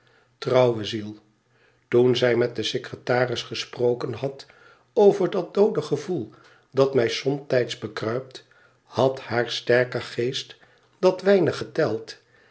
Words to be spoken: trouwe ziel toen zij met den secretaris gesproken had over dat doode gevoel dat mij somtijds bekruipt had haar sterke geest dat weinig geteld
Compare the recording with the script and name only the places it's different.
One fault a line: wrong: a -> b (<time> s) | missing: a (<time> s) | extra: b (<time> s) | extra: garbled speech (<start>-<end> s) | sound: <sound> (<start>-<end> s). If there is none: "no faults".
no faults